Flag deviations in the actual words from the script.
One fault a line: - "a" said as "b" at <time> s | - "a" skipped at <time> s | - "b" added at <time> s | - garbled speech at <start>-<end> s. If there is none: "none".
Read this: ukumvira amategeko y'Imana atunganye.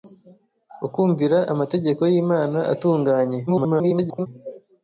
- garbled speech at 3.5-4.3 s